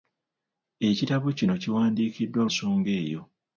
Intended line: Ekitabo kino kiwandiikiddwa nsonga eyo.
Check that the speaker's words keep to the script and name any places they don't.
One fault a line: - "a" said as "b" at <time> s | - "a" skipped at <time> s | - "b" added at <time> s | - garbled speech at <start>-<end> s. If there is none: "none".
none